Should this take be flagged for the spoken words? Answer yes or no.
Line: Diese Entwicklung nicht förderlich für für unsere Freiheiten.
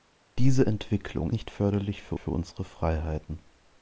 no